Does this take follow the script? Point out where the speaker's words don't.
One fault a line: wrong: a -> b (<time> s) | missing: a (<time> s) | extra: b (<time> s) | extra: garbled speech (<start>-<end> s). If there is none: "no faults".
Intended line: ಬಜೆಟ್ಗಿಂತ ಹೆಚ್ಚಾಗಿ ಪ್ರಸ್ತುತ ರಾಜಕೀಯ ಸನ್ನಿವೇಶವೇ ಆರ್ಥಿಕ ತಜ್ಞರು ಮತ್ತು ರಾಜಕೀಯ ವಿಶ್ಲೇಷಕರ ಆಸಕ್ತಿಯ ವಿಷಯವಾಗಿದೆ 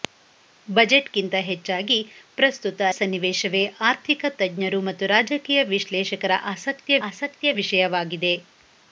missing: ರಾಜಕೀಯ (2.8 s)
extra: ಆಸಕ್ತಿಯ (7.1 s)